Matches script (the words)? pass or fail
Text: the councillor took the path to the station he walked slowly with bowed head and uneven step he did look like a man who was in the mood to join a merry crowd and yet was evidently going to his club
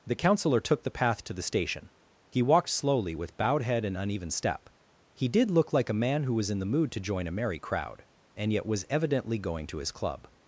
pass